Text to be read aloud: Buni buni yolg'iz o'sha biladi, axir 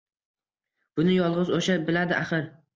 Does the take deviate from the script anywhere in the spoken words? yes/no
yes